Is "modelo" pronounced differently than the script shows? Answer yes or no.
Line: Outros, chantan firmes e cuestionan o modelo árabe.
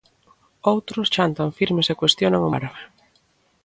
yes